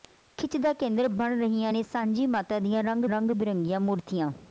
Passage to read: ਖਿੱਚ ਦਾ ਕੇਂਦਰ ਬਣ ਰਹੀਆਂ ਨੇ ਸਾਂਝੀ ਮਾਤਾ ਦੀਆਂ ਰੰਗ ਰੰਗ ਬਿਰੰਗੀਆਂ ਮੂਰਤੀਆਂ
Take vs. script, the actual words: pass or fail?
pass